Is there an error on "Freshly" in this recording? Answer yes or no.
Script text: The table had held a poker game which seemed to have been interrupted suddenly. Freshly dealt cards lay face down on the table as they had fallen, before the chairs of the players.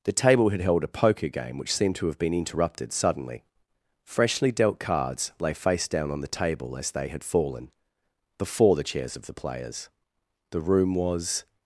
no